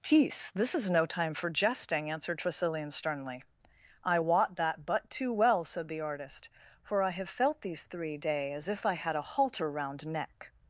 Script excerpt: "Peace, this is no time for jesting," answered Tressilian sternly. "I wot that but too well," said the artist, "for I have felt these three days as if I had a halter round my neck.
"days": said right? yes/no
no